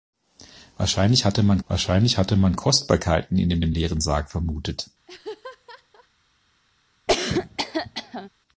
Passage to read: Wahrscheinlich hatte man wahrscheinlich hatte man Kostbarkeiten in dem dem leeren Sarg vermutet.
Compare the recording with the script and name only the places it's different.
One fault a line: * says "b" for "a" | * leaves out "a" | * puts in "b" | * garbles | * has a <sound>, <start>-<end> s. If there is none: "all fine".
* has a laugh, 5.1-6.1 s
* has a cough, 7.1-8.3 s